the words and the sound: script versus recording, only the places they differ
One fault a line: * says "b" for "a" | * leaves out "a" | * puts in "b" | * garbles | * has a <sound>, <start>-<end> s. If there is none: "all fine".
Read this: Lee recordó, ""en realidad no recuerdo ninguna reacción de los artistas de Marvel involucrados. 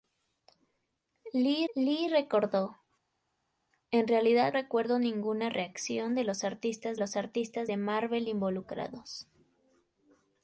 * puts in "lee"
* leaves out "no"
* puts in "los artistas"